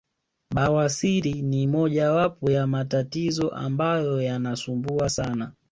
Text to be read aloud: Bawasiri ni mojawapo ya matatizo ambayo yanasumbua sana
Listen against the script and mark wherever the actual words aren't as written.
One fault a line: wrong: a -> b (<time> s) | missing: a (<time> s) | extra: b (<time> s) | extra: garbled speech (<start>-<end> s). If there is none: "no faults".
no faults